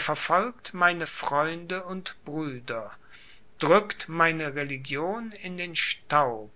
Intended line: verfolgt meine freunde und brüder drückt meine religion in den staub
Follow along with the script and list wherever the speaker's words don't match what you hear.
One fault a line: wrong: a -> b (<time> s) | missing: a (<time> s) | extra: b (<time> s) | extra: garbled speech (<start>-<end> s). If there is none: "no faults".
no faults